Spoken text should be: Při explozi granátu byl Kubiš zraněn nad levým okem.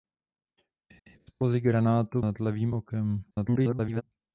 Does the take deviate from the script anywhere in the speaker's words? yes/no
yes